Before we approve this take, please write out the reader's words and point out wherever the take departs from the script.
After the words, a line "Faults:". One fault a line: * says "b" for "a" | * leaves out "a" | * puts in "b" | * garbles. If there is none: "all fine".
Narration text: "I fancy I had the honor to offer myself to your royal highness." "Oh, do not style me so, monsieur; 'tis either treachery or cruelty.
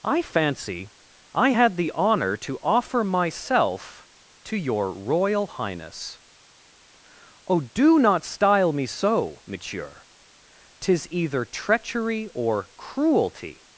"I fancy I had the honor to offer myself to your royal highness." "Oh, do not style me so, monsieur; 'tis either treachery or cruelty.
Faults:
all fine